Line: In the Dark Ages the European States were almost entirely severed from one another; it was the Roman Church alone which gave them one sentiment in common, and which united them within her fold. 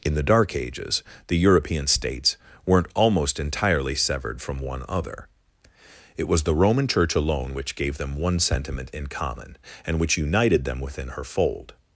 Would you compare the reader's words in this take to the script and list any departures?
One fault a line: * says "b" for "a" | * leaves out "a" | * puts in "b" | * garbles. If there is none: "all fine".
* says "weren't" for "were"
* says "other" for "another"